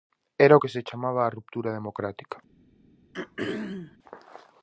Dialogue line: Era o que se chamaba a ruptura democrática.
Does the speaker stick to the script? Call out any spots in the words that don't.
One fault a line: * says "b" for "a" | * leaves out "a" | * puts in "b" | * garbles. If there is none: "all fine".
all fine